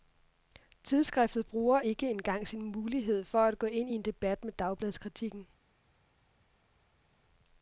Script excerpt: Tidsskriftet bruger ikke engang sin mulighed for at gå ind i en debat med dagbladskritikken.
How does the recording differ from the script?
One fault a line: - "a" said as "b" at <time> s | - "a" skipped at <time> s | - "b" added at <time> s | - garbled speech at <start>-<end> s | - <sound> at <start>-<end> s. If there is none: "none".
none